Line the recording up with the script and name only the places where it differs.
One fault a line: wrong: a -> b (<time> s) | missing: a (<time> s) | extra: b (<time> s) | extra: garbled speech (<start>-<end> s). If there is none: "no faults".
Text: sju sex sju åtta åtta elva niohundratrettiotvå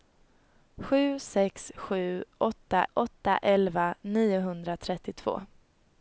no faults